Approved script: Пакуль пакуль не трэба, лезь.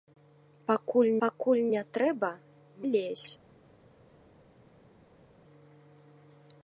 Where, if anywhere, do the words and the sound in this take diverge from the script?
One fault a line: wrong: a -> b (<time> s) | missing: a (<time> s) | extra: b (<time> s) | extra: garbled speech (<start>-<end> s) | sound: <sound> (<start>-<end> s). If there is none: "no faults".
no faults